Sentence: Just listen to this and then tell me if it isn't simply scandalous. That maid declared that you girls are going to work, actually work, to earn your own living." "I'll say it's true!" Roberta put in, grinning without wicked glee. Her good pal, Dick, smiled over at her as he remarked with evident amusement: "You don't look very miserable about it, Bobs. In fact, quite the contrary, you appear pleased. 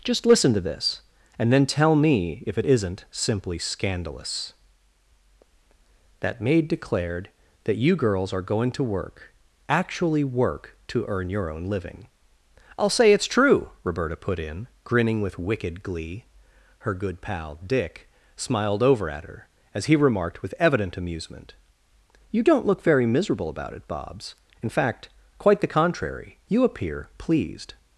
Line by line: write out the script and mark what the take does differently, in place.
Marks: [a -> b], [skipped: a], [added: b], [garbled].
Just listen to this and then tell me if it isn't simply scandalous. That maid declared that you girls are going to work, actually work, to earn your own living." "I'll say it's true!" Roberta put in, grinning [without -> with] wicked glee. Her good pal, Dick, smiled over at her as he remarked with evident amusement: "You don't look very miserable about it, Bobs. In fact, quite the contrary, you appear pleased.